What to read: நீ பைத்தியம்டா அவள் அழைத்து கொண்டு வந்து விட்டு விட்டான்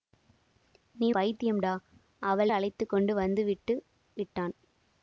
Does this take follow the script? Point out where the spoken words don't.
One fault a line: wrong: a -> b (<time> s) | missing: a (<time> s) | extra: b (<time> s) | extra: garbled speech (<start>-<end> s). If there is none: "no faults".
no faults